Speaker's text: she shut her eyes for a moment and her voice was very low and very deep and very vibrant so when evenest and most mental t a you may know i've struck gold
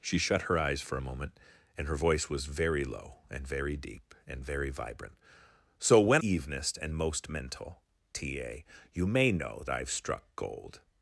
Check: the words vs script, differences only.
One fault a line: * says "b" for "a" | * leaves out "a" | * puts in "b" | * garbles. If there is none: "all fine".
all fine